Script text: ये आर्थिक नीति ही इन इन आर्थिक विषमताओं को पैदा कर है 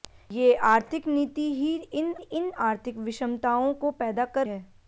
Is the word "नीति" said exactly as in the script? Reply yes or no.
yes